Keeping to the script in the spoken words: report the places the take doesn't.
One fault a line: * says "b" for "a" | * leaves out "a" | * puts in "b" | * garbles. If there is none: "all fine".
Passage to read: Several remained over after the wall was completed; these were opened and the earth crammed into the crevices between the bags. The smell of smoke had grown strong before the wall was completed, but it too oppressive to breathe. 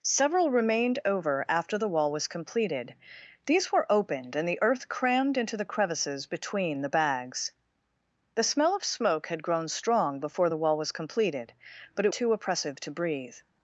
all fine